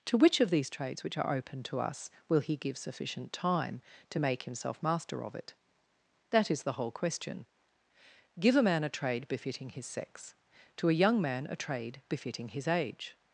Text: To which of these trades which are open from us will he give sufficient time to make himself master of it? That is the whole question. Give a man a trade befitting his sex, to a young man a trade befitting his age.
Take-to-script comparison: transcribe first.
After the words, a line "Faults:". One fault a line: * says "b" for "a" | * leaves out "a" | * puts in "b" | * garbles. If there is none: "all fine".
To which of these trades which are open to us will he give sufficient time to make himself master of it? That is the whole question. Give a man a trade befitting his sex, to a young man a trade befitting his age.
Faults:
* says "to" for "from"